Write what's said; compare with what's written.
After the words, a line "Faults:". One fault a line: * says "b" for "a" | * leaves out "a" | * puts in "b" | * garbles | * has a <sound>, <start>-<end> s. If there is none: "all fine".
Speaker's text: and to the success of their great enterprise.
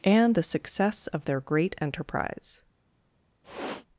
and the success of their great enterprise.
Faults:
* leaves out "to"
* has a sniff, 3.4-3.9 s